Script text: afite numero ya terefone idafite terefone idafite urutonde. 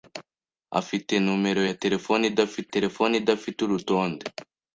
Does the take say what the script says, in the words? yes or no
yes